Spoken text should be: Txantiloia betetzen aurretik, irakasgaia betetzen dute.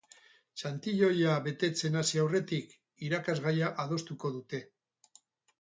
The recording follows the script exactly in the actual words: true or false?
false